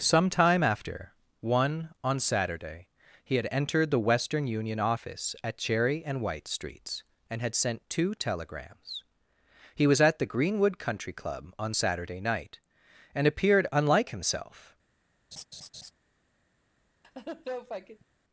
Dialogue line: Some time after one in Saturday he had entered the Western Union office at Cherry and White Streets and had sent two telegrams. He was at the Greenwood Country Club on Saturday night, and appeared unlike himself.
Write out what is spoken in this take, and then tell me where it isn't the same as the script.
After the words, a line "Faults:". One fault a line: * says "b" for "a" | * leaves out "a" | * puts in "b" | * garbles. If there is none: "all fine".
Some time after one on Saturday he had entered the Western Union office at Cherry and White Streets and had sent two telegrams. He was at the Greenwood Country Club on Saturday night, and appeared unlike himself.
Faults:
* says "on" for "in"